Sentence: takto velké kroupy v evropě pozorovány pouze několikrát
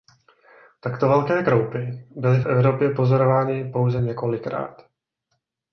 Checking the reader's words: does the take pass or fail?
fail